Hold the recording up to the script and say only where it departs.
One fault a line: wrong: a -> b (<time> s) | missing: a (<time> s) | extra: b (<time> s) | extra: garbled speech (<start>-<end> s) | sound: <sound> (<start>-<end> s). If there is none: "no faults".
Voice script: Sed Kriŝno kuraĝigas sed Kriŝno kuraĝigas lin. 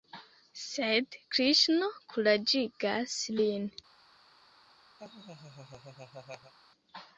missing: sed Kriŝno kuraĝigas (3.2 s)
sound: laugh (5.0-6.5 s)